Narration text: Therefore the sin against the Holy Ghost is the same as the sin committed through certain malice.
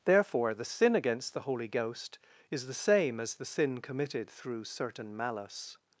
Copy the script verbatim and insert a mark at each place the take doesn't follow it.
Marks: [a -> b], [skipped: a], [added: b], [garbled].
Therefore the sin against the Holy Ghost is the same as the sin committed through certain malice.